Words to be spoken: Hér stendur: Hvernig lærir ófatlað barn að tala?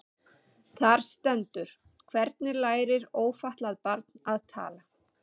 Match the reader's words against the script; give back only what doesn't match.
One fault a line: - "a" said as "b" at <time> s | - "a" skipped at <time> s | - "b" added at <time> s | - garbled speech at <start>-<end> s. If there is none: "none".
- "Hér" said as "Þar" at 0.8 s